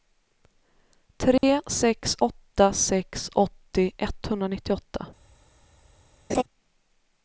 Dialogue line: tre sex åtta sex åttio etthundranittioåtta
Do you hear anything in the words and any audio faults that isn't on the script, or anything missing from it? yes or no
yes